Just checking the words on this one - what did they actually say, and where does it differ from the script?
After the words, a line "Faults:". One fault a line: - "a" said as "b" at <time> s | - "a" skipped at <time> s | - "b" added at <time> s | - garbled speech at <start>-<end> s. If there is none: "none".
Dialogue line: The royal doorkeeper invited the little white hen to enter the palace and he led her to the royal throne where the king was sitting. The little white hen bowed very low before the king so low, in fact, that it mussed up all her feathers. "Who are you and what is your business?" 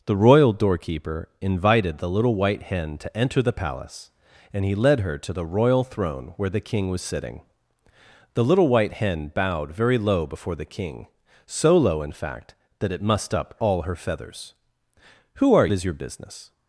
The royal doorkeeper invited the little white hen to enter the palace and he led her to the royal throne where the king was sitting. The little white hen bowed very low before the king so low, in fact, that it mussed up all her feathers. "Who are is your business?"
Faults:
- "you and what" skipped at 15.7 s